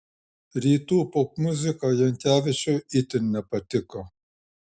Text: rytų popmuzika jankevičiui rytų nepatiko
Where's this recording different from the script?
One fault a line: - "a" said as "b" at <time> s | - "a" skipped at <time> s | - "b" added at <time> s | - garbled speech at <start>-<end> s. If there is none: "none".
- "rytų" said as "itin" at 3.0 s